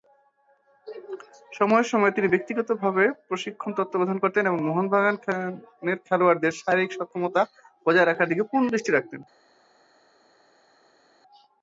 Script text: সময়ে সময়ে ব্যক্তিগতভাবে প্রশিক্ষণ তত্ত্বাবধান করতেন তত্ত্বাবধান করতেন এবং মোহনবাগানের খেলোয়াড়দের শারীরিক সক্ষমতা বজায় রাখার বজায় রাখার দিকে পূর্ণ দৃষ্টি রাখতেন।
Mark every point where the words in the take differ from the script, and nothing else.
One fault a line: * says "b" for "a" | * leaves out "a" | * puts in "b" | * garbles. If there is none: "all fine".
* puts in "তিনি"
* leaves out "তত্ত্বাবধান করতেন"
* leaves out "বজায় রাখার"